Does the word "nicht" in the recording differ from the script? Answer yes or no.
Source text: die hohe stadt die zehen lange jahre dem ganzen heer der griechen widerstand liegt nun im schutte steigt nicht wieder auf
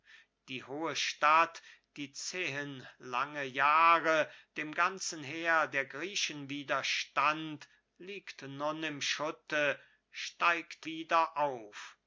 yes